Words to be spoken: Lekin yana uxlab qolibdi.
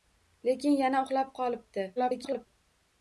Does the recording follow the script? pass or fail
fail